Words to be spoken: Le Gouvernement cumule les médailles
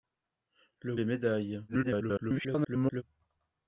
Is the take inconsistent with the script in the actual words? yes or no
yes